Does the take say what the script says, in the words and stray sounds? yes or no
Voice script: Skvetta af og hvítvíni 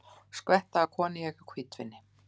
no